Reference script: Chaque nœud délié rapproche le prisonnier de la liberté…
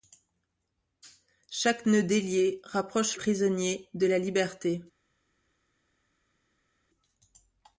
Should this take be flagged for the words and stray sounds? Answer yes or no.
yes